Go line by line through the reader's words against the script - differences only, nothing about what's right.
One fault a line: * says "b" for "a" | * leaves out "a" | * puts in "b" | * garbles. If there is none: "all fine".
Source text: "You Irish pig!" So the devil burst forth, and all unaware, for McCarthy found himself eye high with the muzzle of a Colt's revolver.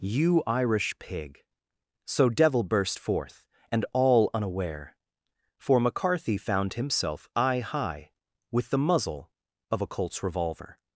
* leaves out "the"